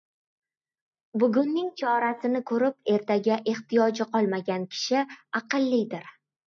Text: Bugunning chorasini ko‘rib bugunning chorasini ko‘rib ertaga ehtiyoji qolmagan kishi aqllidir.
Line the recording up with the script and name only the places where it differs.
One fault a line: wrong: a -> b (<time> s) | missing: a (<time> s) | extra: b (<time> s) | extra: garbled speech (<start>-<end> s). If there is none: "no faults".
missing: bugunning chorasini ko‘rib (2.9 s)